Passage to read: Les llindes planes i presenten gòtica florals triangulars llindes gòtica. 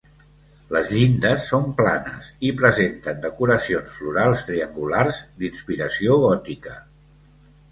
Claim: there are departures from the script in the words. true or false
true